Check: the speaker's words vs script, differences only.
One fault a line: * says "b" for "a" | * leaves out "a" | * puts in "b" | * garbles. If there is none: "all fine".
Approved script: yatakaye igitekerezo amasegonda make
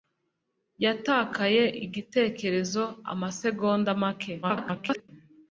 * garbles